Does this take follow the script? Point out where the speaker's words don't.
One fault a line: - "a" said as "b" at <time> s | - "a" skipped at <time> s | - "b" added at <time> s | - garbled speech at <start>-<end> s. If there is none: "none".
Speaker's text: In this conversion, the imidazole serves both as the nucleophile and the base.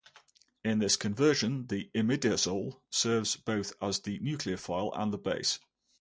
none